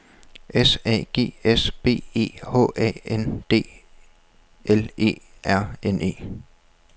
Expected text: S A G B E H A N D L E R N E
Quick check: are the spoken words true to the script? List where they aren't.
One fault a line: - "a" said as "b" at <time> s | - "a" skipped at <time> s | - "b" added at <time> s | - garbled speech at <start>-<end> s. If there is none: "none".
- "S" added at 1.4 s